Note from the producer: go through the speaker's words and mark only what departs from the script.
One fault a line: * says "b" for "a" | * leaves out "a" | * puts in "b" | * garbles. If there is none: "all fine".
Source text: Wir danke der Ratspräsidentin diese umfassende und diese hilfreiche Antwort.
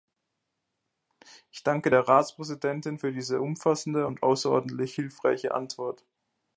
* says "Ich" for "Wir"
* puts in "für"
* says "außerordentlich" for "diese"